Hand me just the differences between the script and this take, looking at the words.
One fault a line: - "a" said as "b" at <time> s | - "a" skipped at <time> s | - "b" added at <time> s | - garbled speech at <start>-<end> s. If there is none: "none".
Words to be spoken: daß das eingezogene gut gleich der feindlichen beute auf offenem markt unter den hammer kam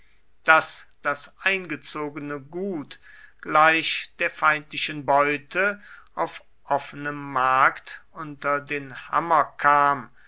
none